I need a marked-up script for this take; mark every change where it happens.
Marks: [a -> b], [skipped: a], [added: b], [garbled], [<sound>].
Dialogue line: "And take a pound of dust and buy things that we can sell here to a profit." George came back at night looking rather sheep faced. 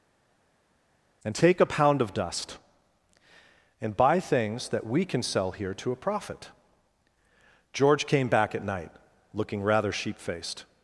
"And take a pound of dust and buy things that we can sell here to a profit." George came back at night looking rather sheep faced.